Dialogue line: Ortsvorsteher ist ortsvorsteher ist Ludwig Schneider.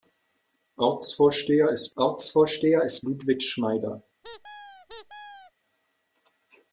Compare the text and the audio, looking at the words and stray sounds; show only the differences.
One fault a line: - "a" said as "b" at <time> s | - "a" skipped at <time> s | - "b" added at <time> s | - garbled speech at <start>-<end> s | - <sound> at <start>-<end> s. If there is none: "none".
- squeak at 4.2-5.5 s